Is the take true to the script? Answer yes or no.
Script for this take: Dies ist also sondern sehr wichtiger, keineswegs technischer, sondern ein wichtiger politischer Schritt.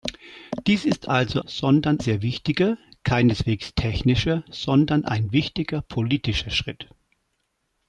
yes